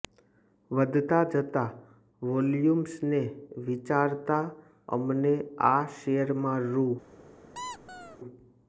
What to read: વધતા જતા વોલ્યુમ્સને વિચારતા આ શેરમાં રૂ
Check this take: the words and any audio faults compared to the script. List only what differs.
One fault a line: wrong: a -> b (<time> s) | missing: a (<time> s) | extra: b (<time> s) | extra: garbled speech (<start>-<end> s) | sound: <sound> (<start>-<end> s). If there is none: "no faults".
extra: અમને (4.9 s)
sound: squeak (7.5-8.2 s)